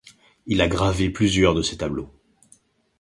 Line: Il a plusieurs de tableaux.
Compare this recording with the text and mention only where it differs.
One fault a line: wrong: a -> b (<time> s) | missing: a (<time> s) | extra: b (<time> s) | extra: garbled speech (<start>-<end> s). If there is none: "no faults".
extra: gravé (0.7 s)
extra: ses (1.6 s)